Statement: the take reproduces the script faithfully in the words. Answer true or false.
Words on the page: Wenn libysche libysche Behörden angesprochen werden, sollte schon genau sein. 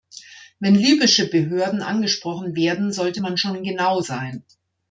false